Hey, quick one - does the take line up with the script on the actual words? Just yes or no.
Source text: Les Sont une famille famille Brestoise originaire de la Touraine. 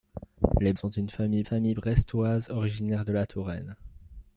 yes